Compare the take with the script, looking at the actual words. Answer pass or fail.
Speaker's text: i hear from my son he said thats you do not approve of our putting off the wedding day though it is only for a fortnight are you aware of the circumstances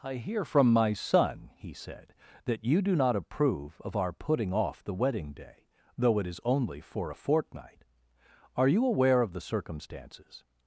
fail